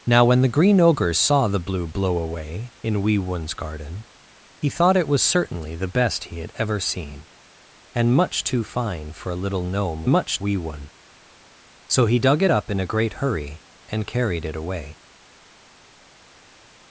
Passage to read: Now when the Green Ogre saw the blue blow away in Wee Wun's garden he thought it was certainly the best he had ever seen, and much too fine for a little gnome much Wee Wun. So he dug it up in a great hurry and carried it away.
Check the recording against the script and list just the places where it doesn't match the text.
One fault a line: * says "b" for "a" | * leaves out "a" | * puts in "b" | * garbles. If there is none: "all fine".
all fine